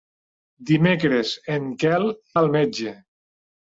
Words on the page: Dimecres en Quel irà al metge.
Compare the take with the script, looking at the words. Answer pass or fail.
fail